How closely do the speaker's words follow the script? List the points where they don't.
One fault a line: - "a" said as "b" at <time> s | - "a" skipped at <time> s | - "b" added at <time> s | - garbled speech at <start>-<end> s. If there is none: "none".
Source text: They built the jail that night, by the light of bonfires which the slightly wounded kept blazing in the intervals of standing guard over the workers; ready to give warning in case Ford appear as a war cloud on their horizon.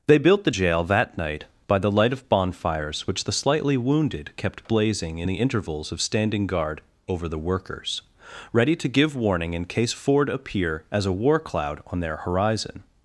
none